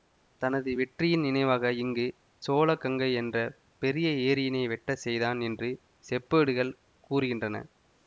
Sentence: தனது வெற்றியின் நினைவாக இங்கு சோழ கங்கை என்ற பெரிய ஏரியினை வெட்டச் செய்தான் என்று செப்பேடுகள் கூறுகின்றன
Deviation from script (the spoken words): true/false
false